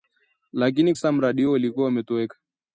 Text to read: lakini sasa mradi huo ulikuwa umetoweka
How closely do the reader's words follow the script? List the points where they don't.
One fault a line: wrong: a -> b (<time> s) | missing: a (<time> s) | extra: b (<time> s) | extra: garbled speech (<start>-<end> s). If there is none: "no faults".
no faults